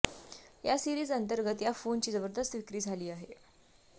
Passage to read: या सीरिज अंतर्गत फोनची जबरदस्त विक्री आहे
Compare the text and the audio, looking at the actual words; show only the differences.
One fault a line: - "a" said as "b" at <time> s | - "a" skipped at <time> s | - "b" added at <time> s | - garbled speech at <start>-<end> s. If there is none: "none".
- "या" added at 1.6 s
- "झाली" added at 2.8 s